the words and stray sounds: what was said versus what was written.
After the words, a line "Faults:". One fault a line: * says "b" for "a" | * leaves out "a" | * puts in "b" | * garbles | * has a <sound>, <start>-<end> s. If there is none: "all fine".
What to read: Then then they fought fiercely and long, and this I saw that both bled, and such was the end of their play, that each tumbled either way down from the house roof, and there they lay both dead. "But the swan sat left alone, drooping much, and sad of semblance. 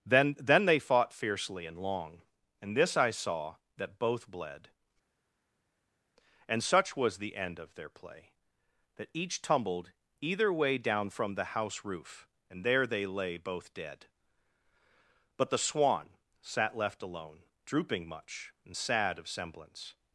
Then then they fought fiercely and long, and this I saw that both bled, and such was the end of their play, that each tumbled either way down from the house roof, and there they lay both dead. "But the swan sat left alone, drooping much, and sad of semblance.
Faults:
all fine